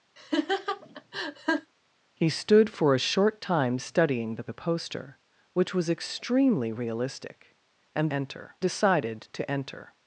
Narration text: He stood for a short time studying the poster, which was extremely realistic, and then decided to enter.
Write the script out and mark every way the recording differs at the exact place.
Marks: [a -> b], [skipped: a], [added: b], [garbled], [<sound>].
[laugh] He stood for a short time studying the [added: the] poster, which was extremely realistic, and [then -> enter] decided to enter.